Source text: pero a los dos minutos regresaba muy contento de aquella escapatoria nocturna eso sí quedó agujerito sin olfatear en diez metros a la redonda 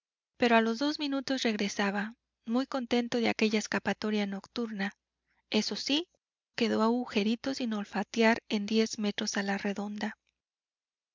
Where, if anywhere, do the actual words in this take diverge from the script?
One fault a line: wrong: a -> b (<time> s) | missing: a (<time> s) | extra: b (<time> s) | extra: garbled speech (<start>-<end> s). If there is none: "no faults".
no faults